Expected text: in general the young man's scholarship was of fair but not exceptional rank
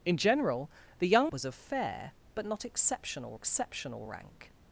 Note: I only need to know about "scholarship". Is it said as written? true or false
false